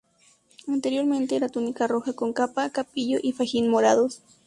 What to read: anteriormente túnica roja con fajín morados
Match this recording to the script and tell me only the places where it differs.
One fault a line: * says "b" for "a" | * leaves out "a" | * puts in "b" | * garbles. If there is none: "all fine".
* puts in "era"
* puts in "capa capillo y"